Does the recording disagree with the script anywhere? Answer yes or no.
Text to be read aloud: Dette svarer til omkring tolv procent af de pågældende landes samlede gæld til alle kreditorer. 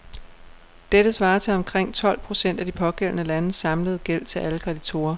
no